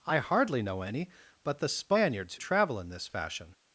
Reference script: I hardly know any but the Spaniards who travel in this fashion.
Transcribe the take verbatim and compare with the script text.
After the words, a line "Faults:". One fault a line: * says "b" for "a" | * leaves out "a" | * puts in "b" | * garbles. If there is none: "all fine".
I hardly know any but the Spaniards travel in this fashion.
Faults:
* leaves out "who"